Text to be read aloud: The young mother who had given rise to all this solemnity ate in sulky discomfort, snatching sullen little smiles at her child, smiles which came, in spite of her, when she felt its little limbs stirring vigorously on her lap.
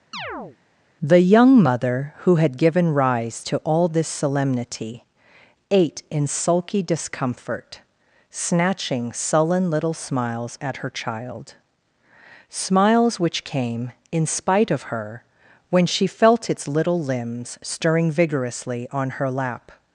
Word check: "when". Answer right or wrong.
right